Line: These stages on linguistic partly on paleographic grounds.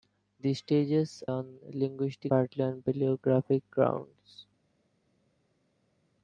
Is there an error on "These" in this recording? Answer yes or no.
no